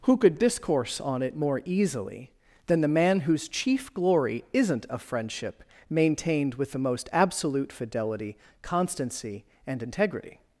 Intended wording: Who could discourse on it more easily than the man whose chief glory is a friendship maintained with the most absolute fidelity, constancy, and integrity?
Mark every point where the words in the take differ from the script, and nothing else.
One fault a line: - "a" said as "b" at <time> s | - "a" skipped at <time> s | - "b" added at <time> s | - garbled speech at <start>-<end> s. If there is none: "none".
- "is" said as "isn't" at 4.5 s